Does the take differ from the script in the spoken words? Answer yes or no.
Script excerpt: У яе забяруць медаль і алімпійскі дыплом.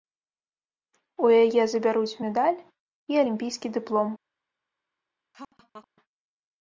no